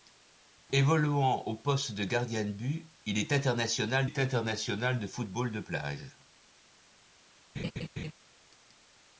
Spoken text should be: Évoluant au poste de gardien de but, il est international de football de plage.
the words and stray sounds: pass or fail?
fail